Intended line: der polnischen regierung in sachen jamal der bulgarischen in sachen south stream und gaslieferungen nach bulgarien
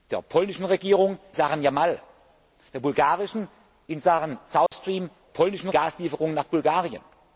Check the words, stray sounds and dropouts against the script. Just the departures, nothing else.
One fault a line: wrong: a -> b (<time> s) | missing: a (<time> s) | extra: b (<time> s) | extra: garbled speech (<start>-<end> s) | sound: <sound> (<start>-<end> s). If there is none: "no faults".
missing: in (1.2 s)
sound: dropout (4.7-4.7 s)
wrong: und -> polnischen (5.3 s)